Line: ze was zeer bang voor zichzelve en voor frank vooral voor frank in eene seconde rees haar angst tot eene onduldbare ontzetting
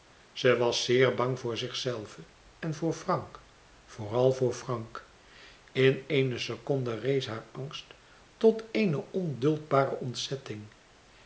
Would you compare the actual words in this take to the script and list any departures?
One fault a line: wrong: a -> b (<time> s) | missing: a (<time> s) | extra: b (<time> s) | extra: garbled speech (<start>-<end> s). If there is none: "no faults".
no faults